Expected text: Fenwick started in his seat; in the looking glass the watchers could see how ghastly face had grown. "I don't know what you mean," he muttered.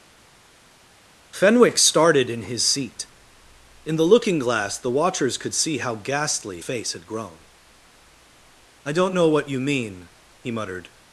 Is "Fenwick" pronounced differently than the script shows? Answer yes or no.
no